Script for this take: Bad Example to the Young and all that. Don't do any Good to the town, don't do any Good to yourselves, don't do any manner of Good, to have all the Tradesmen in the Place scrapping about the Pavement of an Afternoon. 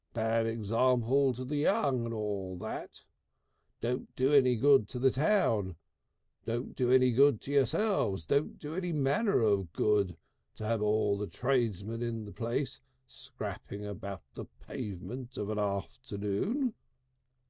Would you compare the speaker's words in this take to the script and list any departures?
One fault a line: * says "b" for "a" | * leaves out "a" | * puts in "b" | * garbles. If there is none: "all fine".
all fine